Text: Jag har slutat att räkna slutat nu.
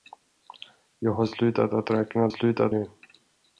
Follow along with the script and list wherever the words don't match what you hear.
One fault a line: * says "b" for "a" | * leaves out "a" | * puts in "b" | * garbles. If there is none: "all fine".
all fine